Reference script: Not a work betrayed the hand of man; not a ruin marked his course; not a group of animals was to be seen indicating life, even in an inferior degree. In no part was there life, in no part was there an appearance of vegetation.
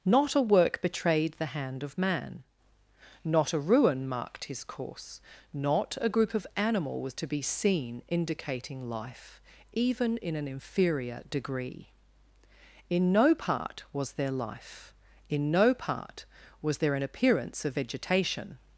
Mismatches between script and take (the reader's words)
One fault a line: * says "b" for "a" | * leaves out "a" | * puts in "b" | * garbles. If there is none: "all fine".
* says "animal" for "animals"